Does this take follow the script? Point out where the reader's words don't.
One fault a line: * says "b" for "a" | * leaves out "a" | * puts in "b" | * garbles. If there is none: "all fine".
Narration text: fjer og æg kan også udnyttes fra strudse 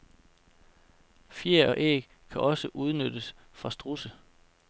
all fine